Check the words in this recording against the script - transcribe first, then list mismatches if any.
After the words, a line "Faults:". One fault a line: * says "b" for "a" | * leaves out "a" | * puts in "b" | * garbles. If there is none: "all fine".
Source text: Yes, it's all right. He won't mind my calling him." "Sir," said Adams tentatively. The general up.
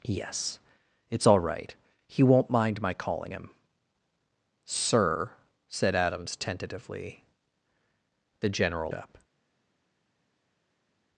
Yes, it's all right. He won't mind my calling him." "Sir," said Adams tentatively. The general up.
Faults:
all fine